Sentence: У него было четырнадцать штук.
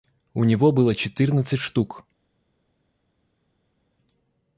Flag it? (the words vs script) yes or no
no